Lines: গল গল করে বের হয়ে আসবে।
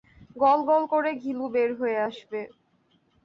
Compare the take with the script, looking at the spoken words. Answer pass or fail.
fail